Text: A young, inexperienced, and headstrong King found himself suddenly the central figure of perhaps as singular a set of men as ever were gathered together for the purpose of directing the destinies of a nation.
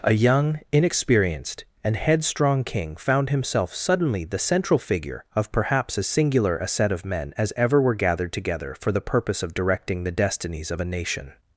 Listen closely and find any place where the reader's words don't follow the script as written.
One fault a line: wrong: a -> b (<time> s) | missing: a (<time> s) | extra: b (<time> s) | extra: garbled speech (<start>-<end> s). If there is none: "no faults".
no faults